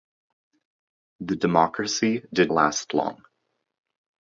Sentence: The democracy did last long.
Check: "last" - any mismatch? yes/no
no